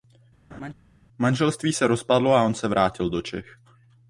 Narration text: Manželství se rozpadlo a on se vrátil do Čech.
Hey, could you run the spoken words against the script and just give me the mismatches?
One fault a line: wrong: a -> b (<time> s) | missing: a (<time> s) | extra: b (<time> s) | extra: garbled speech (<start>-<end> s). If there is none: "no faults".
no faults